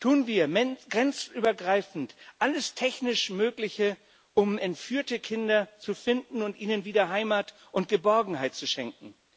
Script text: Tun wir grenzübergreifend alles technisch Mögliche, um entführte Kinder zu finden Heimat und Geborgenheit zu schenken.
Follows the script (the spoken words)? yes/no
no